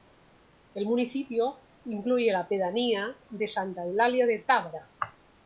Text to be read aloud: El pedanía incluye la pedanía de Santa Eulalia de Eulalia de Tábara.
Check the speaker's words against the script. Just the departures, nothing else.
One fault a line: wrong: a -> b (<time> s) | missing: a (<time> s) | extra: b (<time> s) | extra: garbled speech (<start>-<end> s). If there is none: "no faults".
wrong: pedanía -> municipio (0.8 s)
missing: Eulalia de (4.4 s)